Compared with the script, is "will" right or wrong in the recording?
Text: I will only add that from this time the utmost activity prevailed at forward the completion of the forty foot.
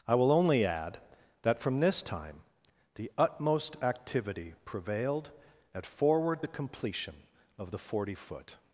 right